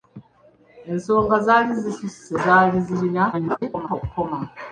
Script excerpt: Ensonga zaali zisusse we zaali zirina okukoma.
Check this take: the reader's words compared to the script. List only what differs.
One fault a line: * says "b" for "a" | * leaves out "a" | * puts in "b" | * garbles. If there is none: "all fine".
* leaves out "we"
* garbles